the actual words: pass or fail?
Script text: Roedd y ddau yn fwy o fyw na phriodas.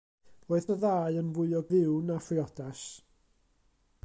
pass